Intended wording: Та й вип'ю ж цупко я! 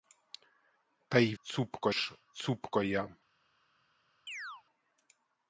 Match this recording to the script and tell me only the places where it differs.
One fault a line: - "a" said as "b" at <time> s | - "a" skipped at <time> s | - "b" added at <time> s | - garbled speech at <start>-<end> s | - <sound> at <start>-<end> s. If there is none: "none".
- "вип'ю" said as "цупко" at 1.4 s
- chirp at 4.3-4.6 s